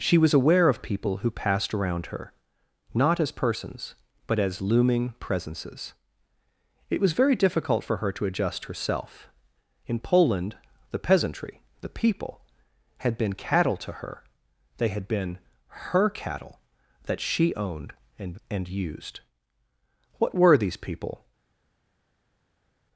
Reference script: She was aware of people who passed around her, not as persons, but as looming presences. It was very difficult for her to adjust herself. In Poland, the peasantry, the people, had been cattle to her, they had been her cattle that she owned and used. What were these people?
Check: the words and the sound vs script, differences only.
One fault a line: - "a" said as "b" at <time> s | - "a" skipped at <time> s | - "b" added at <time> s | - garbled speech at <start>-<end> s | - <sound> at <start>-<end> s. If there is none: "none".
- "and" added at 18.5 s